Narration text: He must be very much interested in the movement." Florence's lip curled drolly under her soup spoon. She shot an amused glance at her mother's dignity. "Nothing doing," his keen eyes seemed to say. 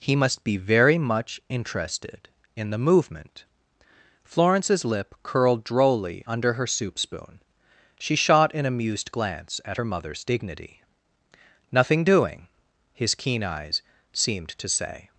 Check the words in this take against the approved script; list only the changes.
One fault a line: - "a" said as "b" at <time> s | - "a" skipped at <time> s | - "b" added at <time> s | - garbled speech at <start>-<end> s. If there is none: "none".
none